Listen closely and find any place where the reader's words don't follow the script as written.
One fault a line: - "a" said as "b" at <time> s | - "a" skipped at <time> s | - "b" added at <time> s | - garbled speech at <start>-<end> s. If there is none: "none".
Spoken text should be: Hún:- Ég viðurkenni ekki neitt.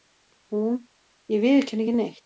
none